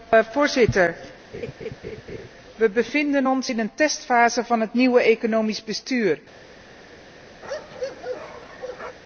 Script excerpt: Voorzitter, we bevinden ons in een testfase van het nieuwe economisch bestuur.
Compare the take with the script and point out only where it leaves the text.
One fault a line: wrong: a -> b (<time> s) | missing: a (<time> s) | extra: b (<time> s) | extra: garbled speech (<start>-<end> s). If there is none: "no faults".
no faults